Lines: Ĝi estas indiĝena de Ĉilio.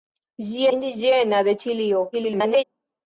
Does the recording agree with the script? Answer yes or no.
no